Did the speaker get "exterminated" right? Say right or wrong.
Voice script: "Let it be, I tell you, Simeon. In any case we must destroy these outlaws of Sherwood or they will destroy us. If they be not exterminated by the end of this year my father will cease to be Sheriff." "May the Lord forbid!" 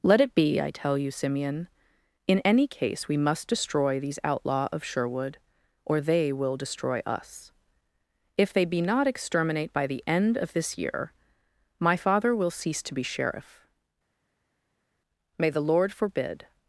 wrong